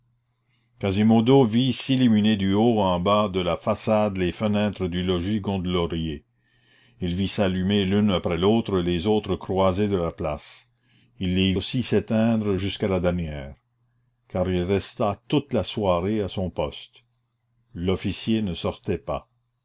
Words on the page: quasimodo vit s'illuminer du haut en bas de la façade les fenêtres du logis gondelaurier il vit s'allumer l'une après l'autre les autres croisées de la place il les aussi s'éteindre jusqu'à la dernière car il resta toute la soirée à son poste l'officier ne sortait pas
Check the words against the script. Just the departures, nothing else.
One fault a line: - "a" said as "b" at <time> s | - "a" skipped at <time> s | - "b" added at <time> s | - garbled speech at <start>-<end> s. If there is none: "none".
none